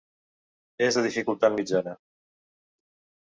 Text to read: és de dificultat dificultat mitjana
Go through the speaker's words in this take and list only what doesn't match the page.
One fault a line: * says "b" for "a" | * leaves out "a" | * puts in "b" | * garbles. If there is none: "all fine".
* leaves out "dificultat"